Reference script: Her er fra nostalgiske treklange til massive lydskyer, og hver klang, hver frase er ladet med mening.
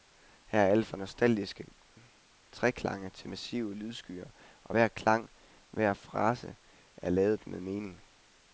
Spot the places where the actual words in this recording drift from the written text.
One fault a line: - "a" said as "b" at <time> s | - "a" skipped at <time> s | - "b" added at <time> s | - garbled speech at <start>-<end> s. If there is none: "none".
- "alt" added at 0.7 s